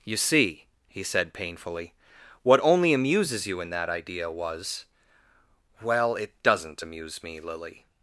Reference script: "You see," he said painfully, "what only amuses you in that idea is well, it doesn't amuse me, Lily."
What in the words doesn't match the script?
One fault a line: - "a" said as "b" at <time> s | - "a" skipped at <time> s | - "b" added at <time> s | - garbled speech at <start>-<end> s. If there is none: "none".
- "is" said as "was" at 4.3 s